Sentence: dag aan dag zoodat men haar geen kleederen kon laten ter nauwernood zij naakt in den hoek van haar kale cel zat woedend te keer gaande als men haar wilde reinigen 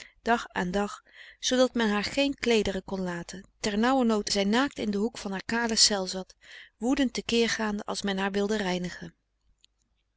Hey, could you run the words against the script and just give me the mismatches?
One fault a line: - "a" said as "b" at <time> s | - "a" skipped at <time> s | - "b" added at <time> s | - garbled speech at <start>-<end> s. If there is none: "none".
none